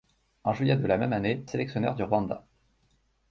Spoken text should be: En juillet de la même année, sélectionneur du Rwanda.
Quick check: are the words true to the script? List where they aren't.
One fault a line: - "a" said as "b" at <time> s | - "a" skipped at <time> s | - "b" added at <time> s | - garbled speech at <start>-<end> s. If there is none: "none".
none